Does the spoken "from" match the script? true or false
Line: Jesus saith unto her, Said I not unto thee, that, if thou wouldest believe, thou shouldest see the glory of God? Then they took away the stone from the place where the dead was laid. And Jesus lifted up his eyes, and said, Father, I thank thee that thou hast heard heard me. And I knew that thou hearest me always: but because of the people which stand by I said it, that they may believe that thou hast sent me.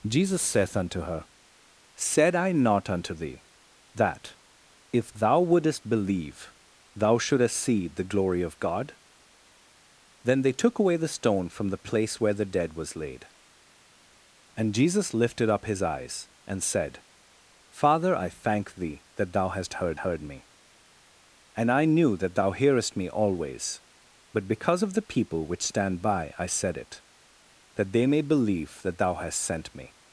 true